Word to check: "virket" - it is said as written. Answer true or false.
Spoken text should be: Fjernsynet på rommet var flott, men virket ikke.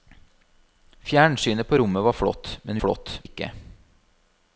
false